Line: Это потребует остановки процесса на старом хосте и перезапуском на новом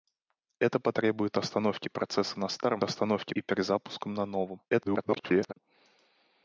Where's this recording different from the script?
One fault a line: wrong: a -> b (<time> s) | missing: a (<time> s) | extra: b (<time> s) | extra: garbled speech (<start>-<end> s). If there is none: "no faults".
wrong: хосте -> остановки (2.8 s)
extra: garbled speech (4.7-5.5 s)